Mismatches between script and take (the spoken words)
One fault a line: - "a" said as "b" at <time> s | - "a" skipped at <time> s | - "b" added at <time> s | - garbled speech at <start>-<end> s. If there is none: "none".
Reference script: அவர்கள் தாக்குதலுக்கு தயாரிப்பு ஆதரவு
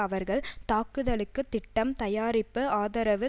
- "திட்டம்" added at 1.5 s